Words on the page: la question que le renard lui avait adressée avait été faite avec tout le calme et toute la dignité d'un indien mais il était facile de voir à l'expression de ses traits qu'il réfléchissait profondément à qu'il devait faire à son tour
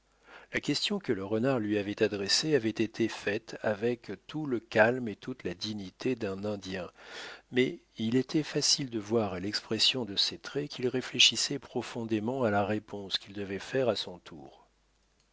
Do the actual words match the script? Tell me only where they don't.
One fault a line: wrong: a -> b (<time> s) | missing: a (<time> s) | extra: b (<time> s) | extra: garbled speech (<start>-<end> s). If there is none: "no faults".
extra: la réponse (12.5 s)